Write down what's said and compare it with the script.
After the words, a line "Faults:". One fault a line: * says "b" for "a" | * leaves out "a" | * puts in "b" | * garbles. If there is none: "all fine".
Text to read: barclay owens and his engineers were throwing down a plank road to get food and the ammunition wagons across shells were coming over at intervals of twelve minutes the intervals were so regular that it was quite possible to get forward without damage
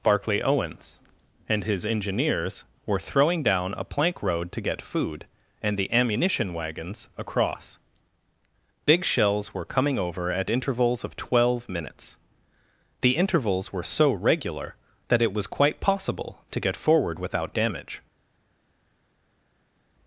barclay owens and his engineers were throwing down a plank road to get food and the ammunition wagons across big shells were coming over at intervals of twelve minutes the intervals were so regular that it was quite possible to get forward without damage
Faults:
* puts in "big"